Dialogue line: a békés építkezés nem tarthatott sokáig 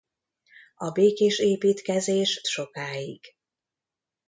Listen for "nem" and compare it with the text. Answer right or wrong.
wrong